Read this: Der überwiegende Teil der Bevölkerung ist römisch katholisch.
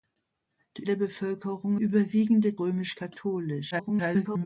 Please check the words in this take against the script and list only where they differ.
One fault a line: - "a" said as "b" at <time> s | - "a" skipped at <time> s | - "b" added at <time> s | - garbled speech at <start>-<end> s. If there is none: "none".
- "überwiegende Teil" skipped at 0.9 s
- "ist" said as "überwiegende" at 1.8 s
- garbled speech at 3.7-4.5 s